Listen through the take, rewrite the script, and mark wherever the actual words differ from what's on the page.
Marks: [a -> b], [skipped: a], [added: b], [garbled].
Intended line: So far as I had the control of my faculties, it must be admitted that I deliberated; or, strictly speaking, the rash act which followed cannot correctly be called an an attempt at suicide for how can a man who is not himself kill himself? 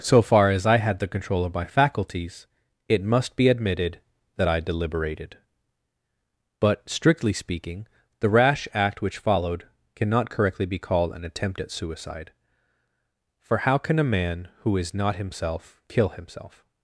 So far as I had the control of my faculties, it must be admitted that I deliberated; [or, -> but] strictly speaking, the rash act which followed cannot correctly be called an [skipped: an] attempt at suicide for how can a man who is not himself kill himself?